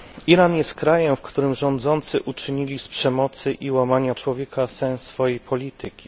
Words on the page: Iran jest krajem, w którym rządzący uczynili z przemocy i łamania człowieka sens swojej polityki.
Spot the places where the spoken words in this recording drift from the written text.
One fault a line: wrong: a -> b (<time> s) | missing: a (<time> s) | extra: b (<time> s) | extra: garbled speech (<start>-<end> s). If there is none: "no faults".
no faults